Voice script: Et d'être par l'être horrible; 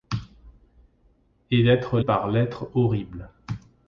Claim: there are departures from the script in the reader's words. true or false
false